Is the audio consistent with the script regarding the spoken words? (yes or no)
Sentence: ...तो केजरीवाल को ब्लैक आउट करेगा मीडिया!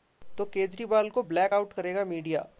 yes